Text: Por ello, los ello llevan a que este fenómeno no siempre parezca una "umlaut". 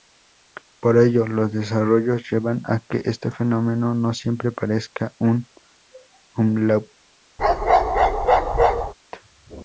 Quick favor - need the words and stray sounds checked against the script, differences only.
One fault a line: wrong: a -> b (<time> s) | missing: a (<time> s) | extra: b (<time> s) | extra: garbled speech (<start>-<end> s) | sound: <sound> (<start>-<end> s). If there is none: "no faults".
wrong: ello -> desarrollos (1.5 s)
wrong: una -> un (5.2 s)
sound: bark (7.4-8.9 s)